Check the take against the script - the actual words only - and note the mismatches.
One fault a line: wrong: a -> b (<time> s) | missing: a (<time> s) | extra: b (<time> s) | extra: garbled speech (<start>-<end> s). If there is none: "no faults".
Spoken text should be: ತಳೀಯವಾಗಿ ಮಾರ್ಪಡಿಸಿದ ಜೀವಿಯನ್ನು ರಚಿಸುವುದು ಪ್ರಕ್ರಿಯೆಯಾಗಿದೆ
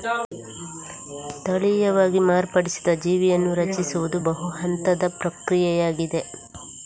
extra: ಬಹು ಹಂತದ (4.2 s)